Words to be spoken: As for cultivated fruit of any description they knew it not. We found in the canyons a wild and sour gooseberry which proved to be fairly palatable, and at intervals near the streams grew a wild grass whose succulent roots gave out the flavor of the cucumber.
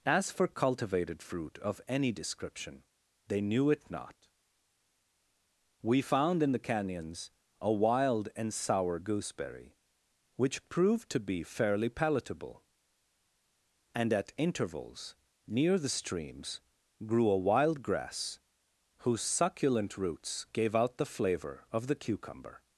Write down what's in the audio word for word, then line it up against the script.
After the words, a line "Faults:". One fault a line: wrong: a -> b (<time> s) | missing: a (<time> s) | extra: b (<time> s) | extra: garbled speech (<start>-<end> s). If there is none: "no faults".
As for cultivated fruit of any description they knew it not. We found in the canyons a wild and sour gooseberry which proved to be fairly palatable, and at intervals near the streams grew a wild grass whose succulent roots gave out the flavor of the cucumber.
Faults:
no faults